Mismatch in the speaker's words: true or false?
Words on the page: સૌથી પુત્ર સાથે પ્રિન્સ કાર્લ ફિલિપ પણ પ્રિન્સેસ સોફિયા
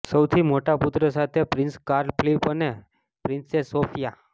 true